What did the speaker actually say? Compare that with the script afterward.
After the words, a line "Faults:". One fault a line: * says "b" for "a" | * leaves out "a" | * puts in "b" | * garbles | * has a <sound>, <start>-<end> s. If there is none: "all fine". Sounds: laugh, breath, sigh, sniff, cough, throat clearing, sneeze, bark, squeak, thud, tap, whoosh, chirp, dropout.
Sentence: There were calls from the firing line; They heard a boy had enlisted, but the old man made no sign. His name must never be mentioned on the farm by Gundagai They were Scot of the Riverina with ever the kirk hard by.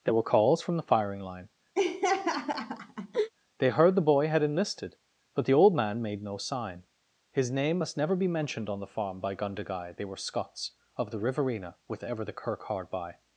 There were calls from the firing line; They heard the boy had enlisted, but the old man made no sign. His name must never be mentioned on the farm by Gundagai They were Scots of the Riverina with ever the kirk hard by.
Faults:
* has a laugh, 1.8-3.3 s
* says "the" for "a"
* says "Scots" for "Scot"